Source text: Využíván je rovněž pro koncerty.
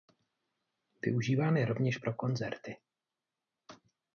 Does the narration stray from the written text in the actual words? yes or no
no